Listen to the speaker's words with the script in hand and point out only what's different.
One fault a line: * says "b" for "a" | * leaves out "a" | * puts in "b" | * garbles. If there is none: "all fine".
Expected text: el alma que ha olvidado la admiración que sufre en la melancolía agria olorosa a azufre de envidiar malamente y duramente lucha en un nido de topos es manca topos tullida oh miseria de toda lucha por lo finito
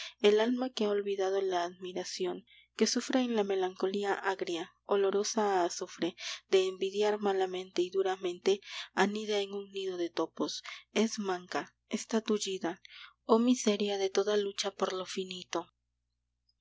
* says "anida" for "lucha"
* says "está" for "topos"